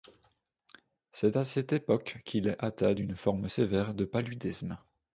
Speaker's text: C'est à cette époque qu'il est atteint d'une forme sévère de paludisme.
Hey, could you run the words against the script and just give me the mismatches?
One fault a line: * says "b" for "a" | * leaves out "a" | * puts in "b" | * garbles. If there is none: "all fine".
all fine